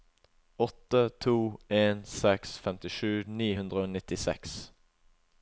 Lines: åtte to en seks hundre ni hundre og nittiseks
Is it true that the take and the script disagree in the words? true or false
true